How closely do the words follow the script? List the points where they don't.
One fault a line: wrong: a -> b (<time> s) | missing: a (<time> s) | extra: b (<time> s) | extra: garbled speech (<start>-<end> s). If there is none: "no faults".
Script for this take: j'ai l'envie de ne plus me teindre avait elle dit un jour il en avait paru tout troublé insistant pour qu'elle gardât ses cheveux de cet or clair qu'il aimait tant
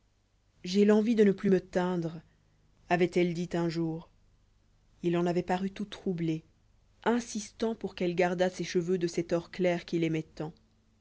no faults